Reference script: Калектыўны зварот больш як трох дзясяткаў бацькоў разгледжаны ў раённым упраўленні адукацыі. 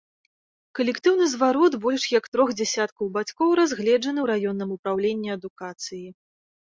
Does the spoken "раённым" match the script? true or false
true